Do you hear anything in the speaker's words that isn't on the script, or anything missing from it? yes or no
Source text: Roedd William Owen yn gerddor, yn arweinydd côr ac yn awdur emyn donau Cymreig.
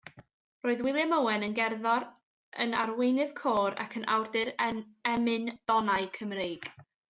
no